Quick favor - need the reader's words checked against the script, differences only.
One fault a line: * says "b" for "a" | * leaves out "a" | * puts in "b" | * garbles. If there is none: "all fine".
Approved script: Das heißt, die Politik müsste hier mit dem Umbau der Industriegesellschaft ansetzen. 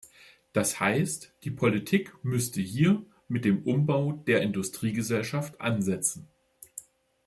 all fine